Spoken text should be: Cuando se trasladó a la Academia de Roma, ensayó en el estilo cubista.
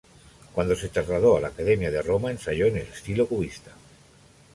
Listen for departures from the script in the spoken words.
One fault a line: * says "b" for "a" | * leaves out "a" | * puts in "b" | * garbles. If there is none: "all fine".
all fine